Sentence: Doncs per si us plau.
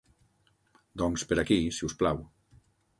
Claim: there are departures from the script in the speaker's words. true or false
true